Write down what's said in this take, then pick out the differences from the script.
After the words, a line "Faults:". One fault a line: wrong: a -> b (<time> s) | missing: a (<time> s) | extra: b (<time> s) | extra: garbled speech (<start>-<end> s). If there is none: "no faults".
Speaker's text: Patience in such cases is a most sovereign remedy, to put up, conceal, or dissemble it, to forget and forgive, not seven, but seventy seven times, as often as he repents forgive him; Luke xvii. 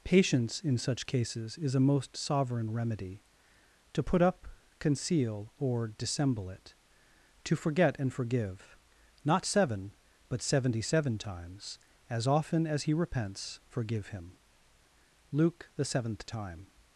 Patience in such cases is a most sovereign remedy, to put up, conceal, or dissemble it, to forget and forgive, not seven, but seventy seven times, as often as he repents forgive him; Luke the seventh time.
Faults:
wrong: xvii -> the seventh time (15.8 s)